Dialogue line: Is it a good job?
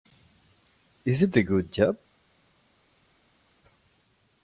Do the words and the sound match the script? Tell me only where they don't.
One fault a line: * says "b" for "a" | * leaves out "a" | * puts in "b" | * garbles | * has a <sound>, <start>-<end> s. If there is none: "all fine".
all fine